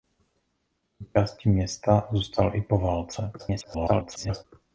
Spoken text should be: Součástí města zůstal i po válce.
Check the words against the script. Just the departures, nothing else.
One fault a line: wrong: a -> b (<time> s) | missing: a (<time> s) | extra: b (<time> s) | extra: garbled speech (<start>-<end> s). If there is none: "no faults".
extra: garbled speech (3.4-4.4 s)